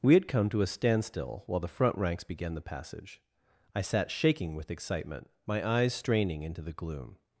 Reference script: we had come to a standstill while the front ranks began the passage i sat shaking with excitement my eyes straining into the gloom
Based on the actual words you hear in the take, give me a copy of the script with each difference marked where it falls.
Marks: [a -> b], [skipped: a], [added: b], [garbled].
we had come to a standstill while the front ranks began the passage i sat shaking with excitement my eyes straining into the gloom